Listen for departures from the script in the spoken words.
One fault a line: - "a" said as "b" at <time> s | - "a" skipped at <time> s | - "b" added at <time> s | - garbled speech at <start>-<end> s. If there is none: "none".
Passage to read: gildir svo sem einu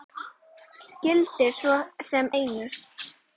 none